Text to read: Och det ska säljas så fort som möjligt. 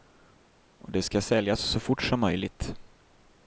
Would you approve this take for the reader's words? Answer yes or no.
yes